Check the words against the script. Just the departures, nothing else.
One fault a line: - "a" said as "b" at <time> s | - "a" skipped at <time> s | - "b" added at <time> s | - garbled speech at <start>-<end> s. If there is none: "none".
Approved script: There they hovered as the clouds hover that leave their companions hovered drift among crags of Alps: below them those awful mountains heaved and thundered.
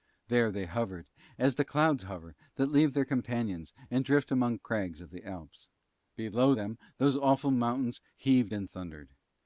- "hovered" said as "and" at 3.9 s
- "the" added at 5.1 s